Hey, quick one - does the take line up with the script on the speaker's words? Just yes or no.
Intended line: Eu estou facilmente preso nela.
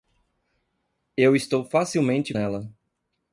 no